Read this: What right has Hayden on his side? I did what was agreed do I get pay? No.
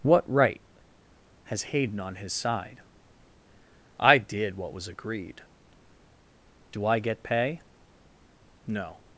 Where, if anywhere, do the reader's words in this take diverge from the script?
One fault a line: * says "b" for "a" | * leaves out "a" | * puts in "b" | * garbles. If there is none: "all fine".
all fine